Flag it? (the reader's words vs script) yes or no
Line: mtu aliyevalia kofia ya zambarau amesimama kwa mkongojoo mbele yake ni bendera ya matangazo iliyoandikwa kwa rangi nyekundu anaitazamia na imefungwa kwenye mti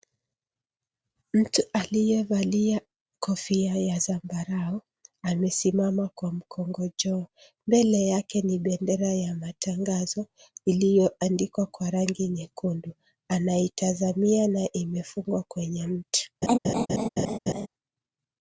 no